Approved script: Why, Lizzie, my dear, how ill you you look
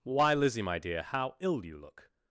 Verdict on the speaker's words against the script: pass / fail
fail